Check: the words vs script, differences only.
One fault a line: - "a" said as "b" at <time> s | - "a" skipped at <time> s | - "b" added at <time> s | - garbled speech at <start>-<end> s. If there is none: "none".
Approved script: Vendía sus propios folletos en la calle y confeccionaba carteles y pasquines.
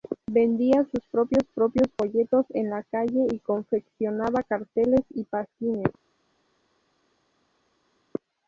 - "propios" added at 1.5 s